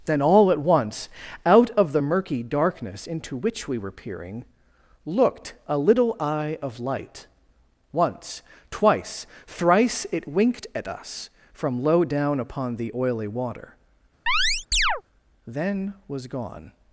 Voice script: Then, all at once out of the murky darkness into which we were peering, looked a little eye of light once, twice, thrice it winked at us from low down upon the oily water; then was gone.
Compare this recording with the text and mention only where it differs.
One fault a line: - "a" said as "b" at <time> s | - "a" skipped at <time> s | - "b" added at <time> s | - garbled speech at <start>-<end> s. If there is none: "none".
none